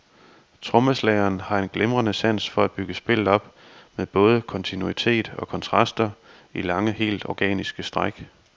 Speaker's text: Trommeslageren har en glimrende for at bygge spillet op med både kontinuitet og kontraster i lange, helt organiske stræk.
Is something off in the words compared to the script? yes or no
yes